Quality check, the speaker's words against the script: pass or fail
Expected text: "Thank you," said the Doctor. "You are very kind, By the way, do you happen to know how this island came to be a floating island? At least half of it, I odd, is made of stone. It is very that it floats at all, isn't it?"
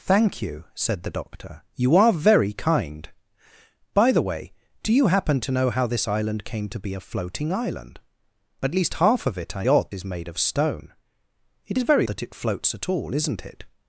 pass